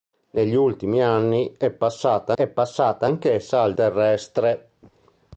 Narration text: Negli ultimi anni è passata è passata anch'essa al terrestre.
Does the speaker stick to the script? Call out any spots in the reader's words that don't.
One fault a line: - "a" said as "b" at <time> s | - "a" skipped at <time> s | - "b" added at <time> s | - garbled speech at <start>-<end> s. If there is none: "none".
none